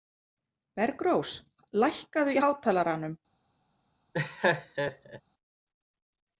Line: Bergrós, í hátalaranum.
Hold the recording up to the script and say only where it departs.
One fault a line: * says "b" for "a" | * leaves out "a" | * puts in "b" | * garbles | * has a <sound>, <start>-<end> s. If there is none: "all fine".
* puts in "lækkaðu"
* has a laugh, 4.1-5.2 s